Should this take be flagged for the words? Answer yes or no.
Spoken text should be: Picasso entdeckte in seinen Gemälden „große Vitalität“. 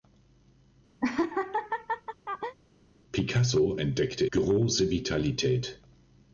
yes